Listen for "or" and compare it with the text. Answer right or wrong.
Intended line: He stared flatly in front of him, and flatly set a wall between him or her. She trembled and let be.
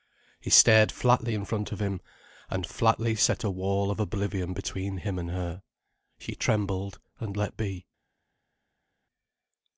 wrong